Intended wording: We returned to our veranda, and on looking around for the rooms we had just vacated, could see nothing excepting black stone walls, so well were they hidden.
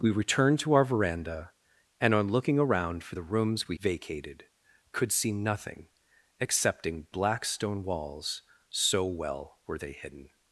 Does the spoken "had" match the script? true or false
false